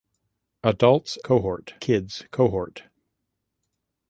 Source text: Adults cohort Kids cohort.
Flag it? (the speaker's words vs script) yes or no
no